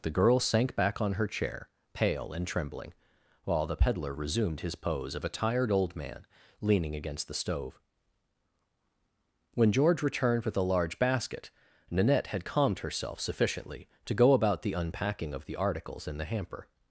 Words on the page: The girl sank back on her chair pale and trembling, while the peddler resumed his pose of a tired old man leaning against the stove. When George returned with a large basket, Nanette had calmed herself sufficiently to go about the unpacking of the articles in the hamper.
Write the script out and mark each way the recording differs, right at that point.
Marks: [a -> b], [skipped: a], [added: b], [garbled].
The girl sank back on her chair pale and trembling, while the peddler resumed his pose of a tired old man leaning against the stove. When George returned with a large basket, Nanette had calmed herself sufficiently to go about the unpacking of the articles in the hamper.